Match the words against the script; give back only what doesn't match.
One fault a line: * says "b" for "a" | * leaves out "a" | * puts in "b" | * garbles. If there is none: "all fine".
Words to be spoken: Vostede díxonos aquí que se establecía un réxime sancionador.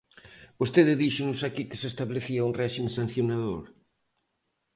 all fine